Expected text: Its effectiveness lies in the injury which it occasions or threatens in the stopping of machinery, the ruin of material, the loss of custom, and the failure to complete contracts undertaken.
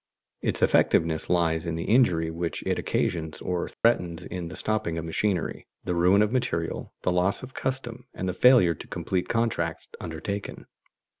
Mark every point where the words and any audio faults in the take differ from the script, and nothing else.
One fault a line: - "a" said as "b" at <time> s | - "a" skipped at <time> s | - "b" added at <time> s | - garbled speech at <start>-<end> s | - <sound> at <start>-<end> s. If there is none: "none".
- dropout at 3.7-3.8 s